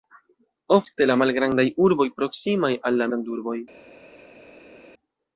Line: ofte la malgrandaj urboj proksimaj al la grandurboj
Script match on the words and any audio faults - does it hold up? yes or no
yes